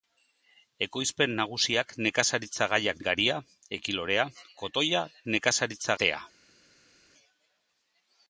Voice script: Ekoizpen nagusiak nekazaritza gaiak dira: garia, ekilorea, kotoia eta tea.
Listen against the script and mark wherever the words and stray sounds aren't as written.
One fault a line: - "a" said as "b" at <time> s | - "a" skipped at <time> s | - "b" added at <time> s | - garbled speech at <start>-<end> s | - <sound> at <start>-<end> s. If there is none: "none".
- "dira" skipped at 3.0 s
- "eta" said as "nekazaritza" at 5.3 s